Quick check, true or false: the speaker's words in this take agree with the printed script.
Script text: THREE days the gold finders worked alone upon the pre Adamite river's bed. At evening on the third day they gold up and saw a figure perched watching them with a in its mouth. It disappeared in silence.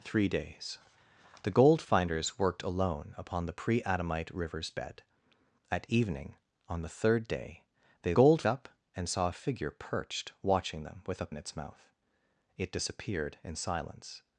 true